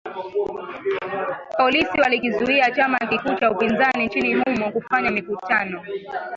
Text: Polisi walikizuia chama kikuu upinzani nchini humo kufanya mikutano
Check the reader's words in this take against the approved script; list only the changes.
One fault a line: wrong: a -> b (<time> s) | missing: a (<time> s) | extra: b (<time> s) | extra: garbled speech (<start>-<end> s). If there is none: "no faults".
extra: cha (3.3 s)